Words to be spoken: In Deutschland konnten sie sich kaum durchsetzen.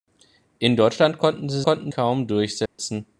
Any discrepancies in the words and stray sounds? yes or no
yes